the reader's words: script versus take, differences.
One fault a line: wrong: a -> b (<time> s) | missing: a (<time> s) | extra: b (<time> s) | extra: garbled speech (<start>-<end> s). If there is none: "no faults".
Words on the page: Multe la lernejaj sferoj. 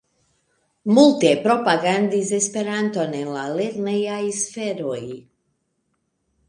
extra: propagandis Esperanton en (1.5 s)